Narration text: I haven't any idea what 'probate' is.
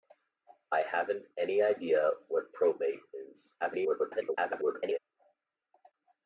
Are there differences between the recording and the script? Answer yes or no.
yes